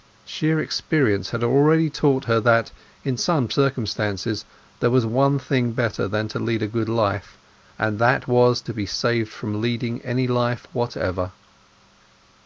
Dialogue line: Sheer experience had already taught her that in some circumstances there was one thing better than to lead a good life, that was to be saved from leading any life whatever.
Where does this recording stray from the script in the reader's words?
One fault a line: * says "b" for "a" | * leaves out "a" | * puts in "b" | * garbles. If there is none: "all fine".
* puts in "and"